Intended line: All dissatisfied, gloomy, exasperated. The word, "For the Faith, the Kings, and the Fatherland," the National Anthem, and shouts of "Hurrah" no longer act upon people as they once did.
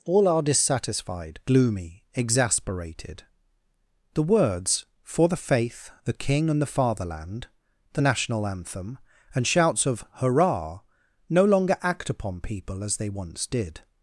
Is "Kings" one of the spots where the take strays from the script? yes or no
yes